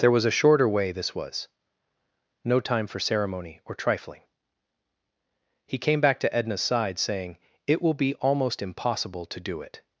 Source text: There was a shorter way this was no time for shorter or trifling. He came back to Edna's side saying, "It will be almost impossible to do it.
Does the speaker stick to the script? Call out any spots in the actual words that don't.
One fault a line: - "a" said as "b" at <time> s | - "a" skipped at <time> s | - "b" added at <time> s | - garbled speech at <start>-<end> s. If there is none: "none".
- "shorter" said as "ceremony" at 3.0 s